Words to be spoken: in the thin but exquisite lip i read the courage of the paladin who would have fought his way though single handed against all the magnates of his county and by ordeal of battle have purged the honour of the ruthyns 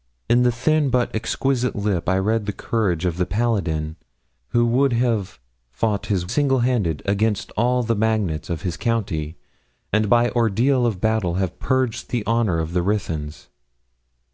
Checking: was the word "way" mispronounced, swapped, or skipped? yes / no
yes